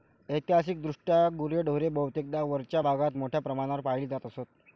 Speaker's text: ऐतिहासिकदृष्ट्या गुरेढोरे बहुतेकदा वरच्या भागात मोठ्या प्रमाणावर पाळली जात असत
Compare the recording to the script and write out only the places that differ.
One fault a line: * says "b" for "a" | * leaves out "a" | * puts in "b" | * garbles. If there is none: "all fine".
all fine